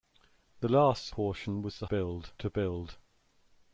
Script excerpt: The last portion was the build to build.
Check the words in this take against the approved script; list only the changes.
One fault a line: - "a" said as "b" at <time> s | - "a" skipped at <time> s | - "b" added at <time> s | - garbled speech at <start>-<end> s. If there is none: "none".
none